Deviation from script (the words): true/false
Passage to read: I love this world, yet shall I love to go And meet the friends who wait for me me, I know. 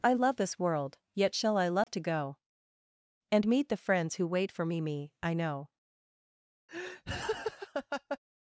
false